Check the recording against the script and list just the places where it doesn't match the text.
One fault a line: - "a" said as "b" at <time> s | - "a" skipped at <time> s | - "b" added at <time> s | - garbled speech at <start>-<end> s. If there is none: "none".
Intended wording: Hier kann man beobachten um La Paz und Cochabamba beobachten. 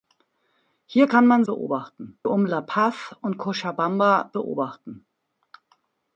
none